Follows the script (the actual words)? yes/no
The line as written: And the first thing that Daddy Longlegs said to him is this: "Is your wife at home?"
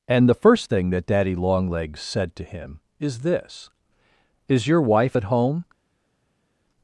yes